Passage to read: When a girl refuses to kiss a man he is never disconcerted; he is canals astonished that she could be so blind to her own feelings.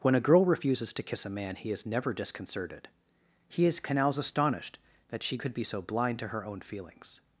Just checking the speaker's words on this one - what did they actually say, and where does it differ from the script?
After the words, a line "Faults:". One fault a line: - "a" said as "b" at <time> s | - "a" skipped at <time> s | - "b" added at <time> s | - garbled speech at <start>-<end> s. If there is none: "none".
When a girl refuses to kiss a man he is never disconcerted; he is canals astonished that she could be so blind to her own feelings.
Faults:
none